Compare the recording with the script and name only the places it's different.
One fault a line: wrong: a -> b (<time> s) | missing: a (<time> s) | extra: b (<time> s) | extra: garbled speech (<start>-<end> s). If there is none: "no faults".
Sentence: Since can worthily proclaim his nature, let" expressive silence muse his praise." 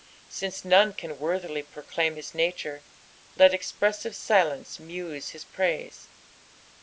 extra: none (0.7 s)